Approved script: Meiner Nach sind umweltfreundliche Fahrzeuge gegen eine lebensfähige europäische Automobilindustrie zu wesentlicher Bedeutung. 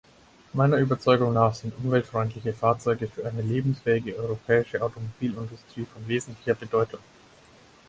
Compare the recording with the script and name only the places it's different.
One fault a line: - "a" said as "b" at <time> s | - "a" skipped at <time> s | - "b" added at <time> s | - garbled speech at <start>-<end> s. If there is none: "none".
- "Überzeugung" added at 0.8 s
- "gegen" said as "für" at 3.1 s
- "zu" said as "von" at 5.9 s